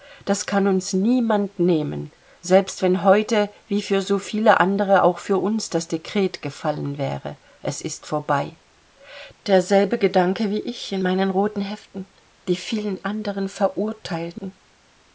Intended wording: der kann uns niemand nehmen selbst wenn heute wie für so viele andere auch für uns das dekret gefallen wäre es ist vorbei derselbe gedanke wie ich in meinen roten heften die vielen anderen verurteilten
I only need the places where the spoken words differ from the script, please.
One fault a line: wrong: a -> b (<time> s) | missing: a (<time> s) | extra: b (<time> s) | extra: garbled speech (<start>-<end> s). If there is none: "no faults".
wrong: der -> das (0.2 s)